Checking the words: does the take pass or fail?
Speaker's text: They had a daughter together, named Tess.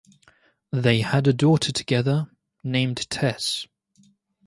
pass